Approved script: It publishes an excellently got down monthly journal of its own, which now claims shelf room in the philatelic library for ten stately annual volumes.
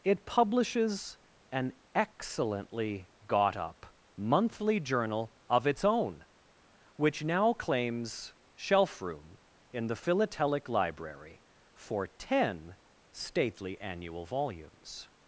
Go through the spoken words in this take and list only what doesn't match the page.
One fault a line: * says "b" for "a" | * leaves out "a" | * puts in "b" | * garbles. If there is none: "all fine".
* says "up" for "down"